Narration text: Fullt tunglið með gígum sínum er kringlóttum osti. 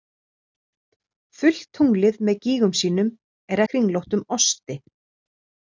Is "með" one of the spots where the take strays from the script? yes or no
no